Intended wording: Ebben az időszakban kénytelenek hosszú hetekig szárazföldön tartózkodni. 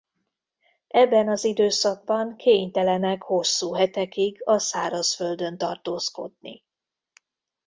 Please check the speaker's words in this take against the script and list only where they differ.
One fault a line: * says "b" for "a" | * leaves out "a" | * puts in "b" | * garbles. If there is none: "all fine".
* puts in "a"